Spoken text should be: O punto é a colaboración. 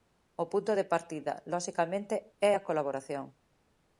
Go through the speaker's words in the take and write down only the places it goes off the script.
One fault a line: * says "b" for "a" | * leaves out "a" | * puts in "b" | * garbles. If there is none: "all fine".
* puts in "de partida loxicamente"